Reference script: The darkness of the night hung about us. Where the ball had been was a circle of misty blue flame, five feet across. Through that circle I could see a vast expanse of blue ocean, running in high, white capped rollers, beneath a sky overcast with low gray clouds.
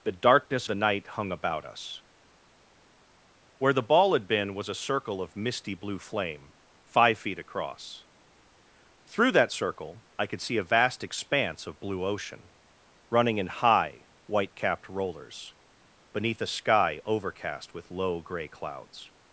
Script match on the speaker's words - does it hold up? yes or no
no